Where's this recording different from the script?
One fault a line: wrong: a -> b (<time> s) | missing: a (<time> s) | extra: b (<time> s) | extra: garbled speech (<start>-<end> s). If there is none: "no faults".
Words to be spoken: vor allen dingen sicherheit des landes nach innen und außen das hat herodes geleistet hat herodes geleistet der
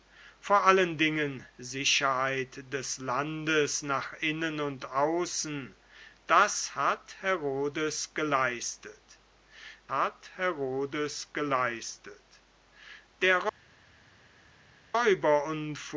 no faults